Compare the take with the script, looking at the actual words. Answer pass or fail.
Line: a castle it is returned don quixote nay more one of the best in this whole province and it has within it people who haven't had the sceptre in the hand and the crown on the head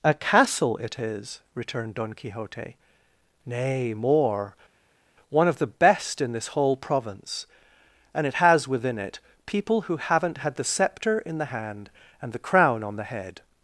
pass